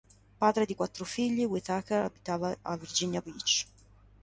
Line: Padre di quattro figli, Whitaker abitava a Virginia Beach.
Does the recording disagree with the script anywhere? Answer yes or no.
no